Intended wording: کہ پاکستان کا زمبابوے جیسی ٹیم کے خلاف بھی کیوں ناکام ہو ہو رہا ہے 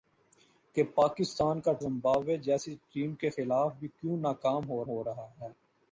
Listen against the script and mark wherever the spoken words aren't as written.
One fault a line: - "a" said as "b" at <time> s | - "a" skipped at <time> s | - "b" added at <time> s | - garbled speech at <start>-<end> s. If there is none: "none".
none